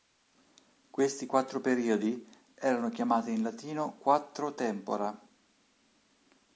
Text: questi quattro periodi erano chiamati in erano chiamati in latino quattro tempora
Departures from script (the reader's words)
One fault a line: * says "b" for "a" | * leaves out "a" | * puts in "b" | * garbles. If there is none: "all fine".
* leaves out "erano chiamati in"